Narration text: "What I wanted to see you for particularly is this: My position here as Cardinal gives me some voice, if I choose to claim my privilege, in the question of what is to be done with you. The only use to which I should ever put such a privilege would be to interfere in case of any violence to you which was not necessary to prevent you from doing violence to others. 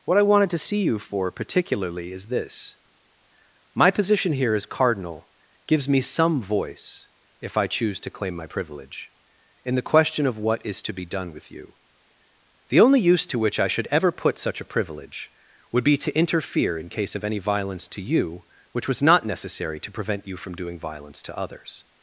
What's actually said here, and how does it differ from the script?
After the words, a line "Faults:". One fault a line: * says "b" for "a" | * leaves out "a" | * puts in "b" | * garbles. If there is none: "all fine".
"What I wanted to see you for particularly is this: My position here as Cardinal gives me some voice, if I choose to claim my privilege, in the question of what is to be done with you. The only use to which I should ever put such a privilege would be to interfere in case of any violence to you which was not necessary to prevent you from doing violence to others.
Faults:
all fine